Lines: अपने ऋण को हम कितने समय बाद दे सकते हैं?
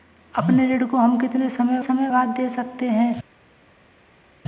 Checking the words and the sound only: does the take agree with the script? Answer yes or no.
no